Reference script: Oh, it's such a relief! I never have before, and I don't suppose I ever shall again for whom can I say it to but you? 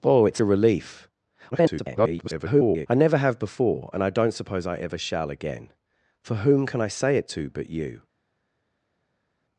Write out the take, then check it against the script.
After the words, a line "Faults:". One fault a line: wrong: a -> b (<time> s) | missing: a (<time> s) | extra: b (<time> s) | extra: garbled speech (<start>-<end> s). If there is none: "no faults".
Oh, it's a relief! [garbled] I never have before, and I don't suppose I ever shall again for whom can I say it to but you?
Faults:
missing: such (0.4 s)
extra: garbled speech (1.5-2.9 s)